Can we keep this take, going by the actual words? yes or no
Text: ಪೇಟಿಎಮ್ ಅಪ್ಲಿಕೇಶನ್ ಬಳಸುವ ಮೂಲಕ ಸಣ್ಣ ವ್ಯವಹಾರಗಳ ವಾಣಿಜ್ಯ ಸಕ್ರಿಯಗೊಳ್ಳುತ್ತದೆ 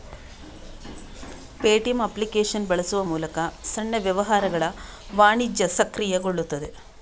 yes